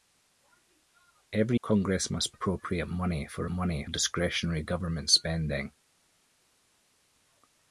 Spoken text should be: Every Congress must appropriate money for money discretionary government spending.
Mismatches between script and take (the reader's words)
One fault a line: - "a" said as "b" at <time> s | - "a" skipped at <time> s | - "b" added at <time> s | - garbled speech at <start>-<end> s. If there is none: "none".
none